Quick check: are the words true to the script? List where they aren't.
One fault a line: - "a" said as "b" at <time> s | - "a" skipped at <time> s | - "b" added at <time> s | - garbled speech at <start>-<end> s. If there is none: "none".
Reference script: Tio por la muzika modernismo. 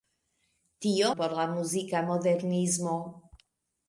none